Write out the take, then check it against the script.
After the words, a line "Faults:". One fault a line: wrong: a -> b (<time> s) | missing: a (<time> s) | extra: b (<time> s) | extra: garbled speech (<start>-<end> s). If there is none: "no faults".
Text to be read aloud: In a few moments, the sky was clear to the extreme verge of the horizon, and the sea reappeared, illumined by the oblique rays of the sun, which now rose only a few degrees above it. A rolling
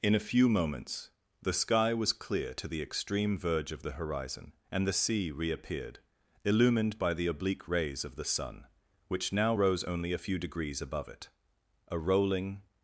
In a few moments, the sky was clear to the extreme verge of the horizon, and the sea reappeared, illumined by the oblique rays of the sun, which now rose only a few degrees above it. A rolling
Faults:
no faults